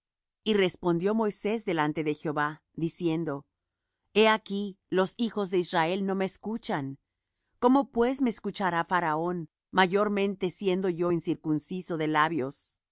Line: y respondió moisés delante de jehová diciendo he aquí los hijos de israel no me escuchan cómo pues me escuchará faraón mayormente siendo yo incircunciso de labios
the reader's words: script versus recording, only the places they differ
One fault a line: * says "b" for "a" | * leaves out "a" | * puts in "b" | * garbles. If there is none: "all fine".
all fine